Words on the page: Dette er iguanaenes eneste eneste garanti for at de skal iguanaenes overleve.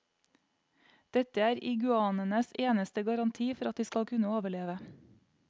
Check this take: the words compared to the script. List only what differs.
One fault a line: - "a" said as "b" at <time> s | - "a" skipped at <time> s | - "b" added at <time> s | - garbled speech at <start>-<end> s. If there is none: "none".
- "eneste" skipped at 3.0 s
- "iguanaenes" said as "kunne" at 4.1 s